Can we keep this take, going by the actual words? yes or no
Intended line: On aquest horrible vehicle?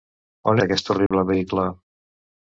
yes